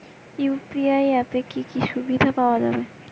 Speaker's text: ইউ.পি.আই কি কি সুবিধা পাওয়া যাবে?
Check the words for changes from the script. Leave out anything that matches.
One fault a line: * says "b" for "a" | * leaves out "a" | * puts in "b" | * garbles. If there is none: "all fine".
* puts in "অ্যাপে"